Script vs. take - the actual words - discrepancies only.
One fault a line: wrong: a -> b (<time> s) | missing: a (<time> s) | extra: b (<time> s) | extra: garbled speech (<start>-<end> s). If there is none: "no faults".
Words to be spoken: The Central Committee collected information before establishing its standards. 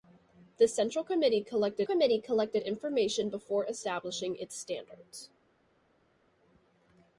extra: Committee collected (1.8 s)